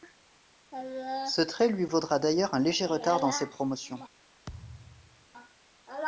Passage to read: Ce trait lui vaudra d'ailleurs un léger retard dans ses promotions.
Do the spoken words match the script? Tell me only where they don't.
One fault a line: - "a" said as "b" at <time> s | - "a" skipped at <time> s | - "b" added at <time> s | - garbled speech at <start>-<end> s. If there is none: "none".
none